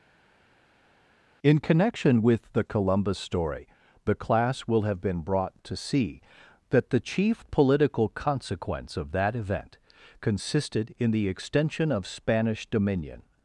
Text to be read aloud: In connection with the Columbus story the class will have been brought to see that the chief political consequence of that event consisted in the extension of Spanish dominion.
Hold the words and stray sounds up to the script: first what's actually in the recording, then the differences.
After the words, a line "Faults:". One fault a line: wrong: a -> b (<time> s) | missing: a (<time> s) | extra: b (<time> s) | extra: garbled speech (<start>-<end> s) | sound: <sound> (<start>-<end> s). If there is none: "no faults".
In connection with the Columbus story the class will have been brought to see that the chief political consequence of that event consisted in the extension of Spanish dominion.
Faults:
no faults